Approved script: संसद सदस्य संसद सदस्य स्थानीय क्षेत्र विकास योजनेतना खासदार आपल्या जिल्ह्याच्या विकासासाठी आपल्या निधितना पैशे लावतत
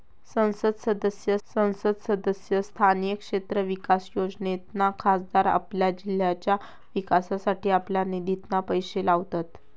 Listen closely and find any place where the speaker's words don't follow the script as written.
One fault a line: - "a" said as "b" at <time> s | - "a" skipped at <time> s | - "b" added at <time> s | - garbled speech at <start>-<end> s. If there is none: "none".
none